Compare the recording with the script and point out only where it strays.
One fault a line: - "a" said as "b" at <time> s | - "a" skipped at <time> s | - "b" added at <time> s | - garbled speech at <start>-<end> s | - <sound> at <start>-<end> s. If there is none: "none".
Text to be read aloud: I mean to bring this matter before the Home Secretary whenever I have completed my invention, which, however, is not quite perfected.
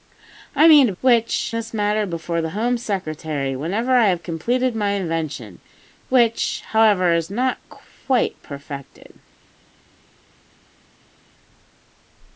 - "bring" said as "which" at 1.0 s